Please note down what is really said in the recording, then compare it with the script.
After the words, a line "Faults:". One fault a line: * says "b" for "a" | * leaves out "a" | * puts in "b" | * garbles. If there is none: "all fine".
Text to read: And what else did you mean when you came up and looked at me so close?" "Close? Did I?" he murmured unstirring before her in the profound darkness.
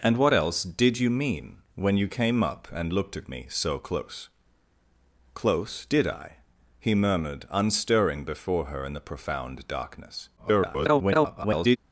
And what else did you mean when you came up and looked at me so close?" "Close? Did I?" he murmured unstirring before her in the profound darkness. [garbled]
Faults:
* garbles